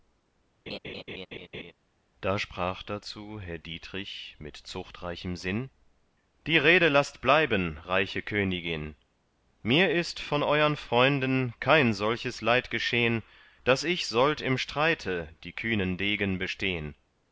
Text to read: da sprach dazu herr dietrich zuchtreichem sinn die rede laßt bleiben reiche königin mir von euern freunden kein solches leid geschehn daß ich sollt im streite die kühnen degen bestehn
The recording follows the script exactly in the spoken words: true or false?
false